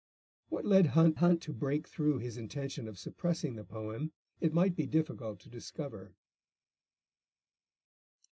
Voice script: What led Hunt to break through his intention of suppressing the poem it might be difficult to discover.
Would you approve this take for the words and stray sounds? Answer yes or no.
no